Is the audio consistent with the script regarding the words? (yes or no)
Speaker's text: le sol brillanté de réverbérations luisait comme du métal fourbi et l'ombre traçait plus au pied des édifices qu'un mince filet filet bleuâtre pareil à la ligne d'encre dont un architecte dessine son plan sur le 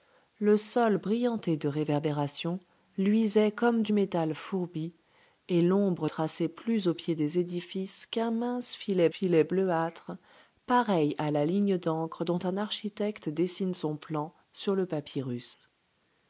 yes